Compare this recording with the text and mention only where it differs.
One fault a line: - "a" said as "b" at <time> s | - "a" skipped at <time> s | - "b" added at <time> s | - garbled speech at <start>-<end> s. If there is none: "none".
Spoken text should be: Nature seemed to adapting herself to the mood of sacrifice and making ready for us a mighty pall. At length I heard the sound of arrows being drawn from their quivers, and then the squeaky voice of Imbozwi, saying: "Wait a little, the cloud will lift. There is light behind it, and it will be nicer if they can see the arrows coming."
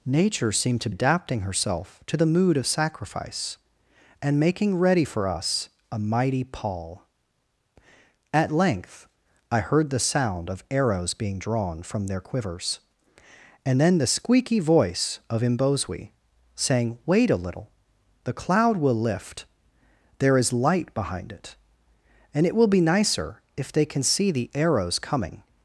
none